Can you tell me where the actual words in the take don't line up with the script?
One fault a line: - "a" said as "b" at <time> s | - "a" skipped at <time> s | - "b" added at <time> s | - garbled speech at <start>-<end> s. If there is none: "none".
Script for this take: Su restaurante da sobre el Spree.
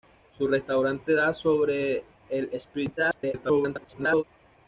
- garbled speech at 3.0-4.2 s